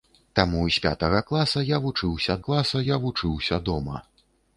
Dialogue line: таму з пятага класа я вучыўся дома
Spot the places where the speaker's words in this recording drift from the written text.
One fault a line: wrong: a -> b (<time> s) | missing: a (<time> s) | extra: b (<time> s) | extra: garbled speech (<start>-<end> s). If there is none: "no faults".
extra: класа я вучыўся (2.4 s)